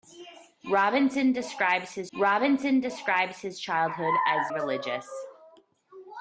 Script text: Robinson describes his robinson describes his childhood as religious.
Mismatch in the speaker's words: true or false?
false